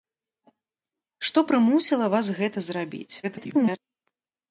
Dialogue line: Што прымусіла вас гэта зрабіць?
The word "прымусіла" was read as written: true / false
true